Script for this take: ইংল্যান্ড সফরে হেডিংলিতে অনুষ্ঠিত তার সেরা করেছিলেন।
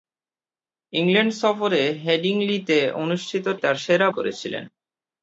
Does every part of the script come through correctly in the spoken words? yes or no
yes